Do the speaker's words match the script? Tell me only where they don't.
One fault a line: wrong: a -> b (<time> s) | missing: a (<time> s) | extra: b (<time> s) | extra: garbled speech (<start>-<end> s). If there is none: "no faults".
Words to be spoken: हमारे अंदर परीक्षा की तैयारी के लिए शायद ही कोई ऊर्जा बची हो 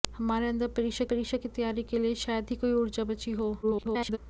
extra: परीक्षा (1.1 s)
extra: garbled speech (3.6-4.2 s)